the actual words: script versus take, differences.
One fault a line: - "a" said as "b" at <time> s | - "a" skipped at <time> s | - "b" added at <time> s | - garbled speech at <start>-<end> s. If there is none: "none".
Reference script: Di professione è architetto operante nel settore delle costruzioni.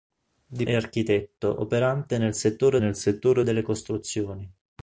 - "professione" skipped at 0.7 s
- "nel settore" added at 2.8 s